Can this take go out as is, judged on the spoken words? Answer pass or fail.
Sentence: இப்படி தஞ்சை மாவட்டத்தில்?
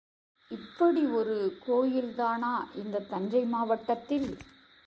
fail